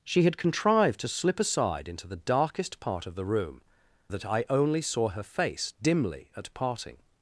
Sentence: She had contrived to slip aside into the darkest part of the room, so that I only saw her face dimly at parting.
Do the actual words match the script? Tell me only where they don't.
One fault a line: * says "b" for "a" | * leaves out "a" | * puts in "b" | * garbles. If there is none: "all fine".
* leaves out "so"